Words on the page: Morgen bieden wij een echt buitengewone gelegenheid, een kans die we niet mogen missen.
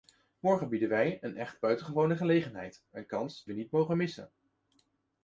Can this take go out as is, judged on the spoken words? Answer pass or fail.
fail